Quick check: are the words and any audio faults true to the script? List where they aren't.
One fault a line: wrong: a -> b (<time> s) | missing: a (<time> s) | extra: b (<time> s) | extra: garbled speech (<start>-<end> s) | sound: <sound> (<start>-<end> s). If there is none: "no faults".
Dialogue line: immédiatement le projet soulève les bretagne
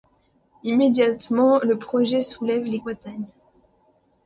no faults